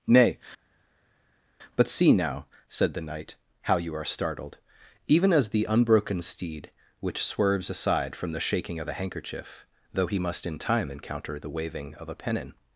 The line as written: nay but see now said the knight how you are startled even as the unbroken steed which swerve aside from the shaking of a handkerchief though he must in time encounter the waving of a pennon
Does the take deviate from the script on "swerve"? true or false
true